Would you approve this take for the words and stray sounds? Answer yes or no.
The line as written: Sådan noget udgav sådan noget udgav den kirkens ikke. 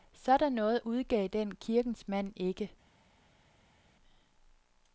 no